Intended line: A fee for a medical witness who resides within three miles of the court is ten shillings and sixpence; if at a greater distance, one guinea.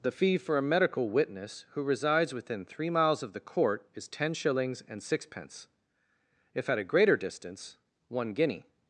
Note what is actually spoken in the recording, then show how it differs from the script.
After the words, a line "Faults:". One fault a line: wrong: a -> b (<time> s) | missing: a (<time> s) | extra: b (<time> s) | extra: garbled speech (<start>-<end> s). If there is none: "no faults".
The fee for a medical witness who resides within three miles of the court is ten shillings and sixpence; if at a greater distance, one guinea.
Faults:
wrong: A -> The (0.0 s)